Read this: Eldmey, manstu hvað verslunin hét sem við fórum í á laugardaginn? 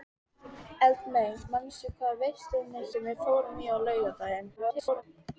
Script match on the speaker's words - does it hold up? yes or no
no